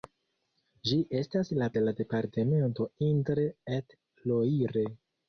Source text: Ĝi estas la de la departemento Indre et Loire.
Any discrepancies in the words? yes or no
no